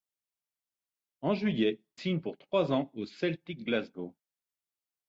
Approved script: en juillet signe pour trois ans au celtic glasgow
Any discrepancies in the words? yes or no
no